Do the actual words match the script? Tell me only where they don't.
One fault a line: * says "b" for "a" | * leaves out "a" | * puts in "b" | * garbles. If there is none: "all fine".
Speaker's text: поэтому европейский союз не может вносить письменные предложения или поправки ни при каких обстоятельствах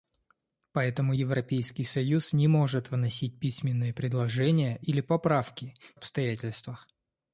* leaves out "ни при каких"